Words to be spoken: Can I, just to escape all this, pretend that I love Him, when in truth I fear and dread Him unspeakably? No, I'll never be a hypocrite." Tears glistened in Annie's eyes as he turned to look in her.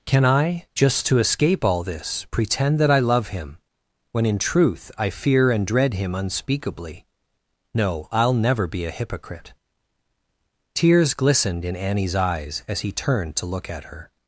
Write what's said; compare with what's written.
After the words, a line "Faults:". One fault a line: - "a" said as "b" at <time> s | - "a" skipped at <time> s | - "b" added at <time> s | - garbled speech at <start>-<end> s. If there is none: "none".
Can I, just to escape all this, pretend that I love Him, when in truth I fear and dread Him unspeakably? No, I'll never be a hypocrite." Tears glistened in Annie's eyes as he turned to look at her.
Faults:
- "in" said as "at" at 13.7 s